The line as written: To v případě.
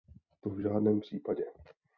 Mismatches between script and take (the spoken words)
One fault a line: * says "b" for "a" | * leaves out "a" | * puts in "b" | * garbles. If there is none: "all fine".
* puts in "žádném"